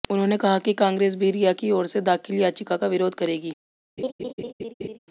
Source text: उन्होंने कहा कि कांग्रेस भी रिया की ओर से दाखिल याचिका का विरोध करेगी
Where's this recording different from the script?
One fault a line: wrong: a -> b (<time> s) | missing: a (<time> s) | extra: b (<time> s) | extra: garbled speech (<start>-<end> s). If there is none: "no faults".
no faults